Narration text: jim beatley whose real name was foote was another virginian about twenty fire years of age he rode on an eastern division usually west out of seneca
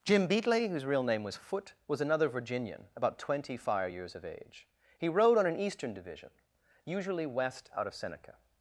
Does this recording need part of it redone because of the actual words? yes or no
no